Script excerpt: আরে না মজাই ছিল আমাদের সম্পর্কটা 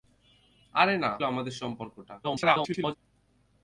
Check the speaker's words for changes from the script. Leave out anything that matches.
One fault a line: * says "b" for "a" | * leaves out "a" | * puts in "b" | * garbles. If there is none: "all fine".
* leaves out "মজাই ছিল"
* garbles